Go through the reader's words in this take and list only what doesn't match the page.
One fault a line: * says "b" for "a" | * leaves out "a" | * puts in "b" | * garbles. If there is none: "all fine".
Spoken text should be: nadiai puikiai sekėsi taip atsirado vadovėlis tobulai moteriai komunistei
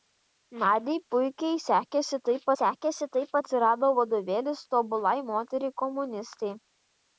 * puts in "sekėsi taip"